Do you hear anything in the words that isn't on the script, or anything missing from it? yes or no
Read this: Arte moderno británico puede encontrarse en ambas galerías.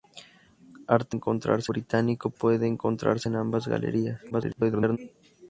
yes